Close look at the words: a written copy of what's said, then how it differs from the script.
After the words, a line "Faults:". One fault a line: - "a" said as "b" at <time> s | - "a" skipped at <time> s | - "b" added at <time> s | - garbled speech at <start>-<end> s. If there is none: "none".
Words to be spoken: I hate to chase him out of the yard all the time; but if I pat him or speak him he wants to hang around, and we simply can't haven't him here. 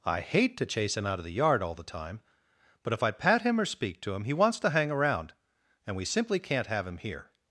I hate to chase him out of the yard all the time; but if I pat him or speak to him he wants to hang around, and we simply can't have him here.
Faults:
- "to" added at 4.0 s
- "haven't" said as "have" at 6.7 s